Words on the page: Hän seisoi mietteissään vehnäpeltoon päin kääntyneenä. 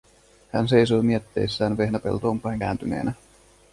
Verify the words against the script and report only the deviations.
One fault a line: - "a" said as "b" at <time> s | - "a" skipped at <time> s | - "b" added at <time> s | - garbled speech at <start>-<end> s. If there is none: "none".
none